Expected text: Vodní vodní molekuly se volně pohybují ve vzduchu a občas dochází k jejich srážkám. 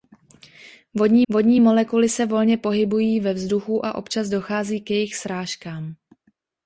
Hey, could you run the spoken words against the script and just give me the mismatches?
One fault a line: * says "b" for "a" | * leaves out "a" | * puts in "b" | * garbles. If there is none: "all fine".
all fine